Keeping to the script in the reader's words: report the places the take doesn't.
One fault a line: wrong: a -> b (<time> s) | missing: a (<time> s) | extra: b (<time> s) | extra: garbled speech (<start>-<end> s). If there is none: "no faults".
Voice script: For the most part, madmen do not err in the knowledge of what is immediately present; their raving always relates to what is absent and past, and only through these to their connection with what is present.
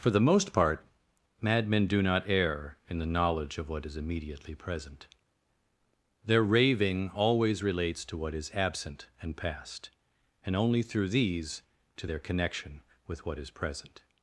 no faults